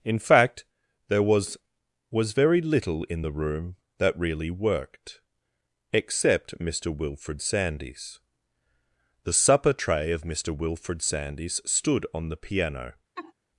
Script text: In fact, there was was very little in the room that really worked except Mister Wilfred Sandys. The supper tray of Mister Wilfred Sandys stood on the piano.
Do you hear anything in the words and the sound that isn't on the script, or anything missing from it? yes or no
yes